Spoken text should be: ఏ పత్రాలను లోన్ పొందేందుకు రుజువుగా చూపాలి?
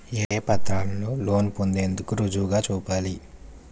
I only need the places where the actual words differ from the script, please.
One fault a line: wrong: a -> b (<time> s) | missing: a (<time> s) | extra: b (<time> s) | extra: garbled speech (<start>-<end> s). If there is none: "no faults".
no faults